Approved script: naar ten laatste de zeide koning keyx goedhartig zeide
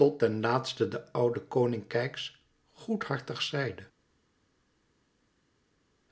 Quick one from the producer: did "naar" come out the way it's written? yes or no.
no